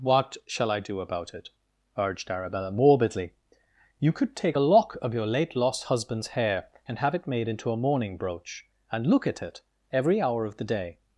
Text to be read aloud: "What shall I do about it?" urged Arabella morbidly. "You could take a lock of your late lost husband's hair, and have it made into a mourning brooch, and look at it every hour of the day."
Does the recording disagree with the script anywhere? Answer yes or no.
no